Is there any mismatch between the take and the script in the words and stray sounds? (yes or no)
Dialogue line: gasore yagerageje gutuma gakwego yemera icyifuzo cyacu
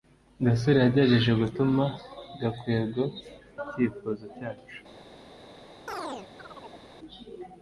yes